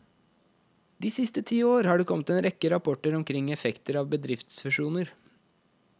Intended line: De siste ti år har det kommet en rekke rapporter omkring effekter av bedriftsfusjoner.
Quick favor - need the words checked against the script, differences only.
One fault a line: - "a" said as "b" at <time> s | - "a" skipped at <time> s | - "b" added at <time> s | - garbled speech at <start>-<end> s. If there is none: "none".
none